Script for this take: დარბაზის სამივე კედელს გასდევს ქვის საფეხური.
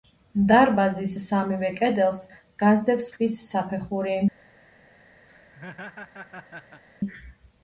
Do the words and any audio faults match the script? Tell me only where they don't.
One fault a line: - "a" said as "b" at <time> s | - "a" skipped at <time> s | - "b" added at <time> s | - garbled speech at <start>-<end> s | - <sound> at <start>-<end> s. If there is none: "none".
- laugh at 5.3-6.8 s